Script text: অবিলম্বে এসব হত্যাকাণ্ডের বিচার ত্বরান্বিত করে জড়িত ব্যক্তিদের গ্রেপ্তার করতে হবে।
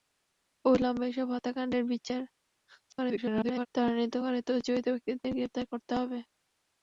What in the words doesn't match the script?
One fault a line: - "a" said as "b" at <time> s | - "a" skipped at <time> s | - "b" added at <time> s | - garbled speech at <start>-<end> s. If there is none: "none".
- garbled speech at 2.9-3.7 s